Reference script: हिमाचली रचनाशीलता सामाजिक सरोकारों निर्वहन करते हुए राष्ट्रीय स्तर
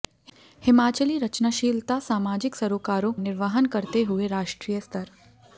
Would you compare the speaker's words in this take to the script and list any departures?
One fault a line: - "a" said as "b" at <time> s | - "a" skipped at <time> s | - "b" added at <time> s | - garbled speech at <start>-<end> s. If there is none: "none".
none